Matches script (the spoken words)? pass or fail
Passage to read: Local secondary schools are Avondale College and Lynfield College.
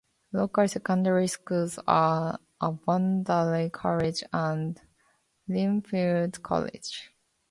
pass